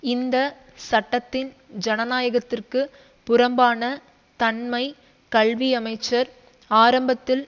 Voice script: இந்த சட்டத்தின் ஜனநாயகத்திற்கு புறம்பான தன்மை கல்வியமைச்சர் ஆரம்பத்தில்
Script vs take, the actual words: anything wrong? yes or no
no